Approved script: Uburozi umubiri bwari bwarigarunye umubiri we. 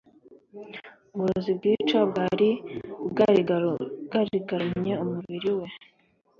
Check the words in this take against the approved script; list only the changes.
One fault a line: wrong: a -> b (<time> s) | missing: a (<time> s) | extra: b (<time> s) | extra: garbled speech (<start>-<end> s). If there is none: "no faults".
wrong: umubiri -> bwica (1.6 s)